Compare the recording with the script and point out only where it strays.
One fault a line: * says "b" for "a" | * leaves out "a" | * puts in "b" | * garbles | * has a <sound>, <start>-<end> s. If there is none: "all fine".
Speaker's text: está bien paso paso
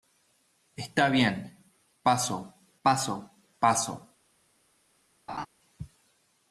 * puts in "paso"
* has a laugh, 5.3-5.5 s